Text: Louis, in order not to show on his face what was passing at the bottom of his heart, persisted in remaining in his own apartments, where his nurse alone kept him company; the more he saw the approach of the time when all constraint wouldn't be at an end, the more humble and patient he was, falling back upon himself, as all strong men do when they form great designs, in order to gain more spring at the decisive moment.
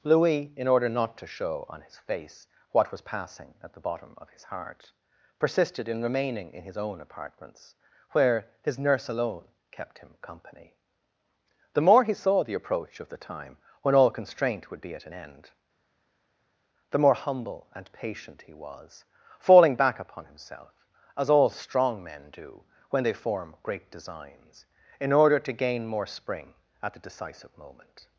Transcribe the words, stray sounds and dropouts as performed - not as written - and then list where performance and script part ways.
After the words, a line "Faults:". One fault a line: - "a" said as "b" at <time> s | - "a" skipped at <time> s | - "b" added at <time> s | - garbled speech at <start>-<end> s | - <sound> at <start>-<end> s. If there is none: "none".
Louis, in order not to show on his face what was passing at the bottom of his heart, persisted in remaining in his own apartments, where his nurse alone kept him company; the more he saw the approach of the time when all constraint would be at an end, the more humble and patient he was, falling back upon himself, as all strong men do when they form great designs, in order to gain more spring at the decisive moment.
Faults:
- "wouldn't" said as "would" at 14.7 s